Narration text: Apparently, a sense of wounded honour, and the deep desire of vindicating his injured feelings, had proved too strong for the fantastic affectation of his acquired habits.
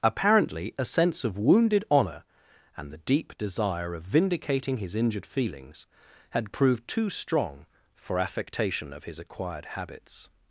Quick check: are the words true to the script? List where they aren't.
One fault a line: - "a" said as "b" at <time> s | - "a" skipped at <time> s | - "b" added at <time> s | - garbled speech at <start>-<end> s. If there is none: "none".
- "the fantastic" skipped at 8.2 s